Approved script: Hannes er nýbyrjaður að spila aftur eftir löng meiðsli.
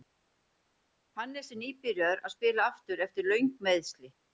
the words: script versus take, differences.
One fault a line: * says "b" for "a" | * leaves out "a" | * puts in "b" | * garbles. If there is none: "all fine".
all fine